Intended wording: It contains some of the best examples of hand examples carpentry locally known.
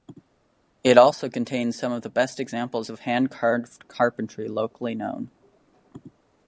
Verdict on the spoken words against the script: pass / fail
fail